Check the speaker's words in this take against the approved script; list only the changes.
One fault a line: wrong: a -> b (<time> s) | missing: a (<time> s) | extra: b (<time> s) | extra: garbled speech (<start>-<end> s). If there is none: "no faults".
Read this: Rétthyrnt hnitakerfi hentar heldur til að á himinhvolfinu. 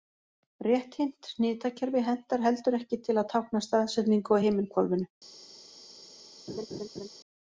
extra: ekki (2.8 s)
extra: tákna staðsetningu (3.4 s)